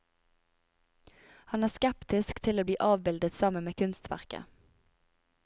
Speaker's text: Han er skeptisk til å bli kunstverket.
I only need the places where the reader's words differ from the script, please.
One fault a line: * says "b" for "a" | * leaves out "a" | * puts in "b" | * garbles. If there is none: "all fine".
* puts in "avbildet sammen med"